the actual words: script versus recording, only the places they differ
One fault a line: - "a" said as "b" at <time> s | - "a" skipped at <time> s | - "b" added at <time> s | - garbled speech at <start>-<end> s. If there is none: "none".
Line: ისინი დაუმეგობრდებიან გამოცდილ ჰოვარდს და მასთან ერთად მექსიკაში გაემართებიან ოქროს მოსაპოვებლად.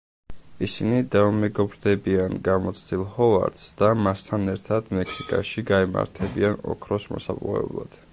none